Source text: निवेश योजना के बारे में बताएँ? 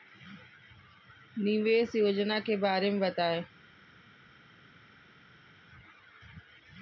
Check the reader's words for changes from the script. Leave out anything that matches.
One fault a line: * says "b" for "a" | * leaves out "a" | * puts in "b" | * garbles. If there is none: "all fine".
all fine